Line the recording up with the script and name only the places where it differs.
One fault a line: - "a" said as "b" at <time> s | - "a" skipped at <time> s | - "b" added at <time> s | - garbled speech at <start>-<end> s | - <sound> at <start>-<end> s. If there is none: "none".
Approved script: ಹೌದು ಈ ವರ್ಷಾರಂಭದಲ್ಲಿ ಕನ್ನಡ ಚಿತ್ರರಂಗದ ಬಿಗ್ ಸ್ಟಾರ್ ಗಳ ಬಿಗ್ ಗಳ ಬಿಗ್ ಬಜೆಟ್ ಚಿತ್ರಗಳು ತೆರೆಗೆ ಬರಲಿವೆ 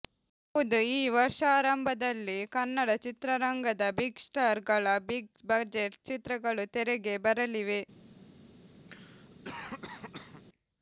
- "ಗಳ ಬಿಗ್" skipped at 5.3 s
- cough at 8.9-10.4 s